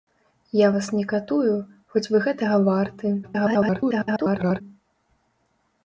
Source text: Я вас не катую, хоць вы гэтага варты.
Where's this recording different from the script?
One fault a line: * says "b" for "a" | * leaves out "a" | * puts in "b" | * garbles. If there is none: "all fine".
* garbles